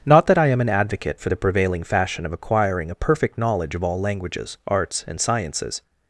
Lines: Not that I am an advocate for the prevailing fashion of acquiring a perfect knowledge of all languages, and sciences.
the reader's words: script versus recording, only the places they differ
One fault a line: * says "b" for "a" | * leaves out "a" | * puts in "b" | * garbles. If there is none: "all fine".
* puts in "arts"